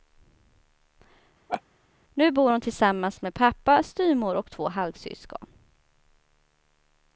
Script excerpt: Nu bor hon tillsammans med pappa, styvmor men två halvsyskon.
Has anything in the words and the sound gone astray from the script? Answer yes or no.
yes